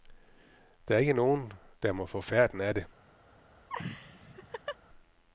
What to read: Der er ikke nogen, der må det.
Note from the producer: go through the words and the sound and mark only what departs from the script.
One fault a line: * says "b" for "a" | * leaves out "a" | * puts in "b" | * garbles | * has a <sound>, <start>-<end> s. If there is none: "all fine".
* puts in "få færten af"
* has a laugh, 3.7-4.8 s